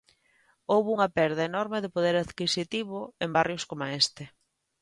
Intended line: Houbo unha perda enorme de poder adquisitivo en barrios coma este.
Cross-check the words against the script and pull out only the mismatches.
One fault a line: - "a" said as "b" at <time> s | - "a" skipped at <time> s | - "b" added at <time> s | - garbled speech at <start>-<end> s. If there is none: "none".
none